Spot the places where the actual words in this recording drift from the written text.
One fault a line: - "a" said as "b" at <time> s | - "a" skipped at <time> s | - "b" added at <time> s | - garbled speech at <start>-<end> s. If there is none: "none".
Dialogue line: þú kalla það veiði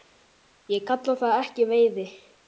- "þú" said as "ég" at 0.8 s
- "ekki" added at 1.4 s